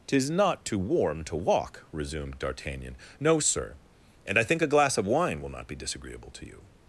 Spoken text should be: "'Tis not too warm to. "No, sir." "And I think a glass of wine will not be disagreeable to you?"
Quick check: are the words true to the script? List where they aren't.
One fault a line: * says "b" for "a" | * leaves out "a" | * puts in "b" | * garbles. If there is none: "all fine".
* puts in "walk resumed D'Artagnan"